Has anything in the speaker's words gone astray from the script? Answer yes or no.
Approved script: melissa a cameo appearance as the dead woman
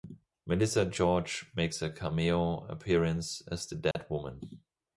yes